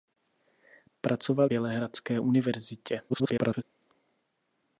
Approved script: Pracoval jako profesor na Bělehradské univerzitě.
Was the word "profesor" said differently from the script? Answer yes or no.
yes